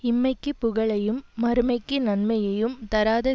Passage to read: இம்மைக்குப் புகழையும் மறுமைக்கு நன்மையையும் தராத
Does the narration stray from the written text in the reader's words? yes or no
no